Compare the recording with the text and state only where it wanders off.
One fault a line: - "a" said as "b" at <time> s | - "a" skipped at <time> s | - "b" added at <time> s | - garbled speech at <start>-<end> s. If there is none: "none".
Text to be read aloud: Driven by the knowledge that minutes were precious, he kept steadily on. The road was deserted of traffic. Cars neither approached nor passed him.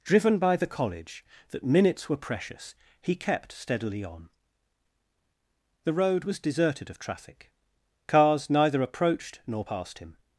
- "knowledge" said as "college" at 0.7 s